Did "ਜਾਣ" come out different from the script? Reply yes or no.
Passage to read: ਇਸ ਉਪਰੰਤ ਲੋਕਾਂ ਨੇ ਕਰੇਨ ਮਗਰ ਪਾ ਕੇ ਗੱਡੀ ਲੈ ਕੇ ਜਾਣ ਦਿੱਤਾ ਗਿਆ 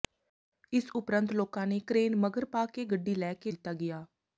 yes